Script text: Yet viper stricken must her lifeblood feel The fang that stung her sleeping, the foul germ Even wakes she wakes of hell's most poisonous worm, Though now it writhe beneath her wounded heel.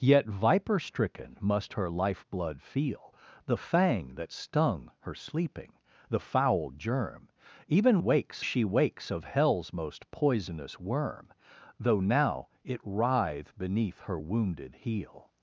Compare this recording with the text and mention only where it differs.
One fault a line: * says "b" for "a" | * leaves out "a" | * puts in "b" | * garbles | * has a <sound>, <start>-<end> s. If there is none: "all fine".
all fine